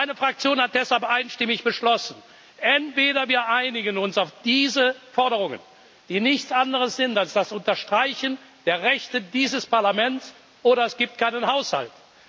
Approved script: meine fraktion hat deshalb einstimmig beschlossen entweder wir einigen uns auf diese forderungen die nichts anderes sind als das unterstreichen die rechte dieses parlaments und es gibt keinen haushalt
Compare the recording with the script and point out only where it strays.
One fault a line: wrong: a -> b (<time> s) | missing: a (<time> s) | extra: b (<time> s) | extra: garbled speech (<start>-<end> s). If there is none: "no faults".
wrong: die -> der (8.6 s)
wrong: und -> oder (10.6 s)